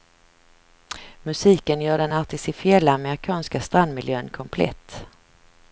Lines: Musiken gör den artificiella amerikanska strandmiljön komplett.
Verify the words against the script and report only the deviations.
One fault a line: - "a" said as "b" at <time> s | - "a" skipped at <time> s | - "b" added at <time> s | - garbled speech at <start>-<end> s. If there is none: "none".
none